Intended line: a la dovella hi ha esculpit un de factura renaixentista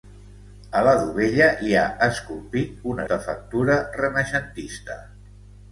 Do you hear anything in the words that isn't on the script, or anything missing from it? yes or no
no